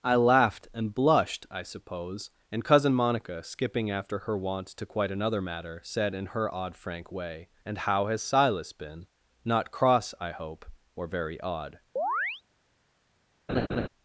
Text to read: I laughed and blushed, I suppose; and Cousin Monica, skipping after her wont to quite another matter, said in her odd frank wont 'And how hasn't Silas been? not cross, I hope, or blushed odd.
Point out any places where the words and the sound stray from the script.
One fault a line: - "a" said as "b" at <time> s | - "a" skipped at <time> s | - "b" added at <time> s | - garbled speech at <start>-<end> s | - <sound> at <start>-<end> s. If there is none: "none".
- "wont" said as "way" at 7.1 s
- "hasn't" said as "has" at 8.1 s
- "blushed" said as "very" at 11.1 s
- chirp at 12.0-12.4 s
- laugh at 13.5-13.9 s